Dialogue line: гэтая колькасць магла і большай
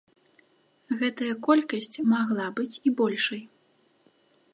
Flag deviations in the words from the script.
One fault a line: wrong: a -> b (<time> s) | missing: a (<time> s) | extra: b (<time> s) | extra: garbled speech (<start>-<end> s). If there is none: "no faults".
extra: быць (2.6 s)